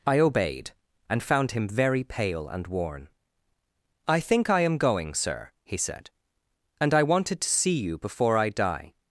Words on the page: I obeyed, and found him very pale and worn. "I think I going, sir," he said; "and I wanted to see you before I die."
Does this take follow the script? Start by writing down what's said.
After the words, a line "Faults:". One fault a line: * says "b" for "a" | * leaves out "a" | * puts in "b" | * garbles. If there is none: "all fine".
I obeyed, and found him very pale and worn. "I think I am going, sir," he said; "and I wanted to see you before I die."
Faults:
* puts in "am"